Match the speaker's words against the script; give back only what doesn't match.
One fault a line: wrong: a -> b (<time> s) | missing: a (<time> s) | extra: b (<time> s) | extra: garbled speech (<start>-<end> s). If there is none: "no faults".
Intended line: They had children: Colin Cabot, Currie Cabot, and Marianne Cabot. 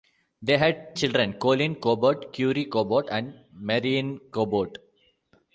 no faults